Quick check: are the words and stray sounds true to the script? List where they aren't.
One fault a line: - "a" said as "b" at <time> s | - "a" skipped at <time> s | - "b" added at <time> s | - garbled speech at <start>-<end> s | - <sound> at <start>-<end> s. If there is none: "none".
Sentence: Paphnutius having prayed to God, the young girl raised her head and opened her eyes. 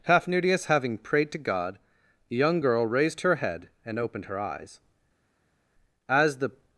- "As the" added at 6.1 s